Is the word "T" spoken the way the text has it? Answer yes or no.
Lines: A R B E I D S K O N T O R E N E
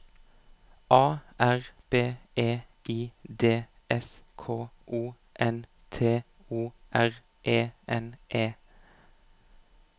yes